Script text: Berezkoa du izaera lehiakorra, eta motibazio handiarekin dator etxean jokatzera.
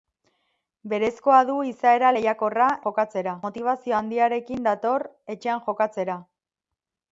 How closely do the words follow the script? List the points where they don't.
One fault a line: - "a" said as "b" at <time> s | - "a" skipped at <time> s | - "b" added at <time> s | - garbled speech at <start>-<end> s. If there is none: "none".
- "eta" said as "jokatzera" at 2.9 s